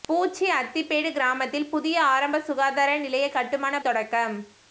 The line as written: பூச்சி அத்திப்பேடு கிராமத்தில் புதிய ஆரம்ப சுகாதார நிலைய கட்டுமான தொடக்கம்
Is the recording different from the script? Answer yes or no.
no